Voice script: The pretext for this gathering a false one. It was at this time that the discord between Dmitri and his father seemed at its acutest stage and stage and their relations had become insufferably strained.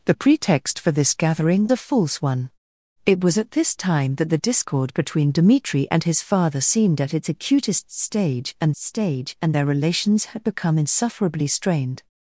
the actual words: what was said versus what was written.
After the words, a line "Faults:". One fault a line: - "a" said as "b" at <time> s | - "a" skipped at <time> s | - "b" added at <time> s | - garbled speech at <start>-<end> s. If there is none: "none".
The pretext for this gathering a false one. It was at this time that the discord between Dmitri and his father seemed at its acutest stage and stage and their relations had become insufferably strained.
Faults:
none